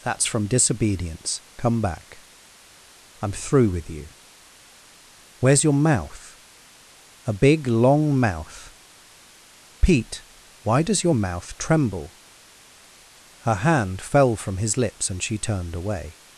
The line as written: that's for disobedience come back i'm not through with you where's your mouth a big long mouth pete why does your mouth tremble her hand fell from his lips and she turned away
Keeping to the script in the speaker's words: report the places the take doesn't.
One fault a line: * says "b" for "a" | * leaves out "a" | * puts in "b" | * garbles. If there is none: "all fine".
* says "from" for "for"
* leaves out "not"